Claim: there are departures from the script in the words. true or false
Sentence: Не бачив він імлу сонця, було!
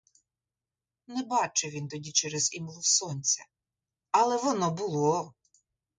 true